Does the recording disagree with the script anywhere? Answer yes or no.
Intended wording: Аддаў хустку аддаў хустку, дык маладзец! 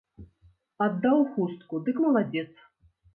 yes